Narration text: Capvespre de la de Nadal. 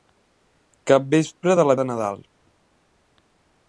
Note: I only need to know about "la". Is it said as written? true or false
true